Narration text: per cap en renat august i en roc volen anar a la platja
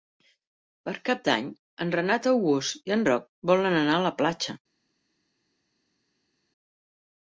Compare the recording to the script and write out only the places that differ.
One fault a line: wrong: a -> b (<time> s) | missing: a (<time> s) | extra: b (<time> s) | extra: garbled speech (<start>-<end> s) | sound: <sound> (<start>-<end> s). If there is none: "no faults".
extra: d'any (1.3 s)